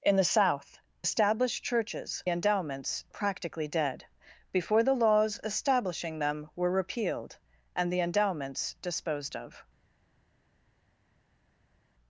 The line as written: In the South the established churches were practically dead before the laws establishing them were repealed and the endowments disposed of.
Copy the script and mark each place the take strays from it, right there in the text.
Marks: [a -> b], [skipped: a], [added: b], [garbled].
In the South [skipped: the] established churches [were -> endowments] practically dead before the laws establishing them were repealed and the endowments disposed of.